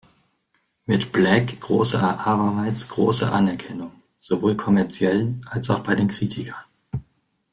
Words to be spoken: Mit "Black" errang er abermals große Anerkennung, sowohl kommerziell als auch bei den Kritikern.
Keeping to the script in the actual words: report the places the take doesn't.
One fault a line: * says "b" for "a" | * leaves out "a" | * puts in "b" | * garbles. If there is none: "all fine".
* says "große" for "errang"